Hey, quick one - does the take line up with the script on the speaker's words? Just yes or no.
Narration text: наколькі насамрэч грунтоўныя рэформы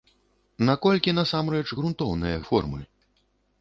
yes